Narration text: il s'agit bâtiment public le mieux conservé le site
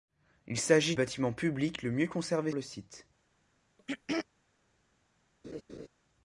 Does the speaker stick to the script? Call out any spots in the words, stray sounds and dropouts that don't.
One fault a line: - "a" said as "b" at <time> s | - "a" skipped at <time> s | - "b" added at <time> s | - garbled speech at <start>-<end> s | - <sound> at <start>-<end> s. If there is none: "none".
- throat clearing at 3.8-4.3 s
- laugh at 5.4-5.9 s